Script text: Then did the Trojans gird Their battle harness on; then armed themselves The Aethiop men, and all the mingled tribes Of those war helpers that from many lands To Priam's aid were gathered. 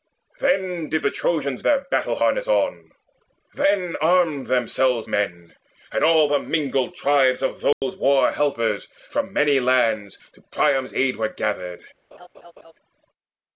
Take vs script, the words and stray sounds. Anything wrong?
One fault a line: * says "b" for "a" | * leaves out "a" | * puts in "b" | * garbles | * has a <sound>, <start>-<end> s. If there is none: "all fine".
* leaves out "gird"
* leaves out "The Aethiop"
* has a dropout, 7.7-7.8 s
* leaves out "that"
* has a laugh, 12.1-12.7 s